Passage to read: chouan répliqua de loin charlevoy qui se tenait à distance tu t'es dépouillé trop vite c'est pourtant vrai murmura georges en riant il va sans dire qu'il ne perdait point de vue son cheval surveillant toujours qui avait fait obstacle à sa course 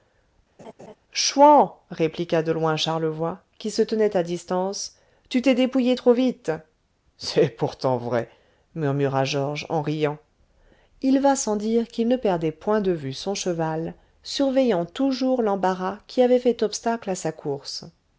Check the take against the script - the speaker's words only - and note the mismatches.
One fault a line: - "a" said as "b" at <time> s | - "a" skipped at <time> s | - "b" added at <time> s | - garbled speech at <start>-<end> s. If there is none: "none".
- "l'embarras" added at 15.4 s